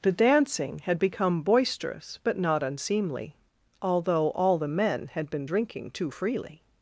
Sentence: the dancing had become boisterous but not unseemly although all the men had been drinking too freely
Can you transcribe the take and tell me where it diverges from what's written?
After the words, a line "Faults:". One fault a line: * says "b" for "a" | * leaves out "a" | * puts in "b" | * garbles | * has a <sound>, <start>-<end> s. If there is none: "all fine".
the dancing had become boisterous but not unseemly although all the men had been drinking too freely
Faults:
all fine